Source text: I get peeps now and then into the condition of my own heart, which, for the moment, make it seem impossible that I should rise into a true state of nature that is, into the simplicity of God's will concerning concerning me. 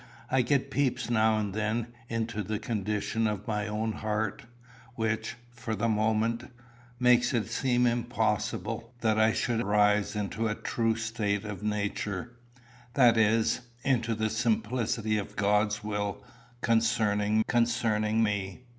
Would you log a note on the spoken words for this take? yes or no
no